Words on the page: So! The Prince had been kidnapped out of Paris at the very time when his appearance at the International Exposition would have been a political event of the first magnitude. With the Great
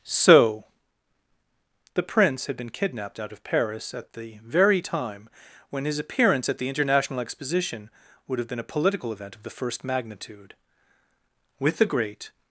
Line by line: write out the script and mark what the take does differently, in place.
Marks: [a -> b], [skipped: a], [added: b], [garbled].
So! The Prince had been kidnapped out of Paris at the very time when his appearance at the International Exposition would have been a political event of the first magnitude. With the Great